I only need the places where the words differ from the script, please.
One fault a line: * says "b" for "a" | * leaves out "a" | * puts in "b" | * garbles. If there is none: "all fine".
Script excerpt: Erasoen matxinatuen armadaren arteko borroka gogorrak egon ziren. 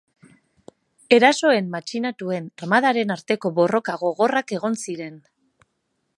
all fine